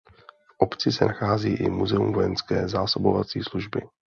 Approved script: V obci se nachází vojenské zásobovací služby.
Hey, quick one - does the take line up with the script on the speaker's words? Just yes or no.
no